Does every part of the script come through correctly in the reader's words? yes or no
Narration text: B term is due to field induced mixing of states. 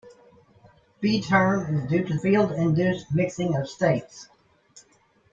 yes